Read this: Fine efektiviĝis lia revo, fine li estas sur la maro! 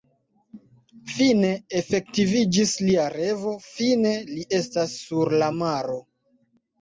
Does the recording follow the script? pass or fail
pass